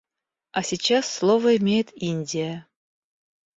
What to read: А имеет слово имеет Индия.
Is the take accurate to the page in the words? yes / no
no